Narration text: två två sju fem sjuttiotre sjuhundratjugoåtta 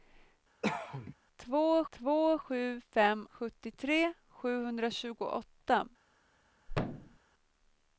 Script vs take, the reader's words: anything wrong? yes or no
no